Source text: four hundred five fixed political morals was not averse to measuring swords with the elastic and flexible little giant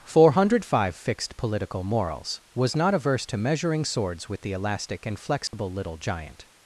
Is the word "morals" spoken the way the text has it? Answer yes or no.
yes